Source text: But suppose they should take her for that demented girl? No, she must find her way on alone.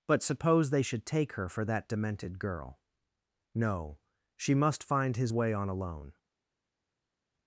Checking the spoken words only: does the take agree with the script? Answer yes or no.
no